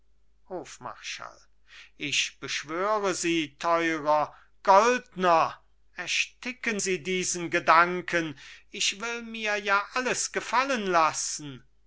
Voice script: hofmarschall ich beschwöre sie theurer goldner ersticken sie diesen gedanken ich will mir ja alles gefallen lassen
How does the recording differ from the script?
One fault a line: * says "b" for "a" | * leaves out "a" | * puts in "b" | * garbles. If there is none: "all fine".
all fine